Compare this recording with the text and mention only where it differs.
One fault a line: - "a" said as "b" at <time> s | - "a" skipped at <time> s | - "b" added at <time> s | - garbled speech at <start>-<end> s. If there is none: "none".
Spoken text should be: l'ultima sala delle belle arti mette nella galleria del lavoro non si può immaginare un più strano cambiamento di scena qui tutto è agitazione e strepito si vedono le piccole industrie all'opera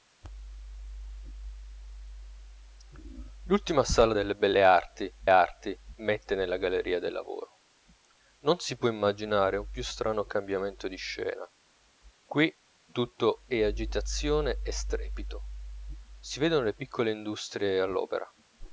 - "arti" added at 5.3 s